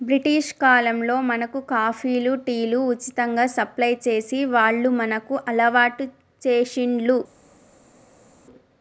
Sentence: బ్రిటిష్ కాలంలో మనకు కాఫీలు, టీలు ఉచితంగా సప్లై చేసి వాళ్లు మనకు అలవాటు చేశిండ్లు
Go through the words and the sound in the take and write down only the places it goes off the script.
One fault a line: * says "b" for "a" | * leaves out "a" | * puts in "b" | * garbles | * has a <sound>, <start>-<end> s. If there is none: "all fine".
all fine